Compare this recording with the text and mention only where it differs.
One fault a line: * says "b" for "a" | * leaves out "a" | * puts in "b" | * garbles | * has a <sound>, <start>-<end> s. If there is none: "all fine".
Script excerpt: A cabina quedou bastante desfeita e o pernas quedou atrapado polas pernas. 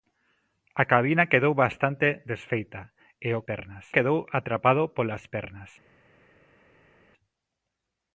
all fine